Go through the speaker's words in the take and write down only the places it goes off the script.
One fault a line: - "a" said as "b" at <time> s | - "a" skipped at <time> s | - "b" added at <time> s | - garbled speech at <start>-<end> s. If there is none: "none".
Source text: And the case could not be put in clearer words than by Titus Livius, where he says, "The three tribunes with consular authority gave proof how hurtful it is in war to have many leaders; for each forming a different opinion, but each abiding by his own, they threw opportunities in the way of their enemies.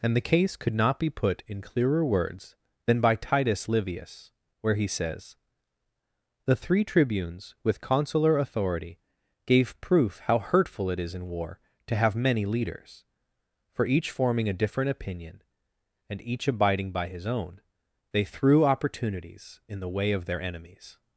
- "but" said as "and" at 16.1 s